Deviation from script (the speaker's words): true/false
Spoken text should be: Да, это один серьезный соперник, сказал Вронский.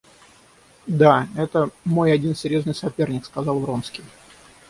true